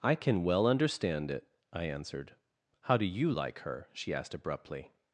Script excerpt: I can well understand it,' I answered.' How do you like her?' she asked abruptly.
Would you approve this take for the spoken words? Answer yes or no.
yes